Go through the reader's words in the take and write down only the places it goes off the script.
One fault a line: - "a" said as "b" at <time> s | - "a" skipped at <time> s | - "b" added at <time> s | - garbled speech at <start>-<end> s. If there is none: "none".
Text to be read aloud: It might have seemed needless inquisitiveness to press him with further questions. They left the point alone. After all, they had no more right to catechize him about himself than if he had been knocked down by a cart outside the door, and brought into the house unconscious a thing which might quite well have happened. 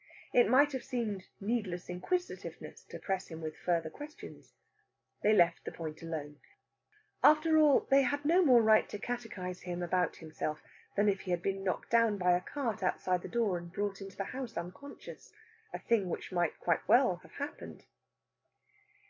none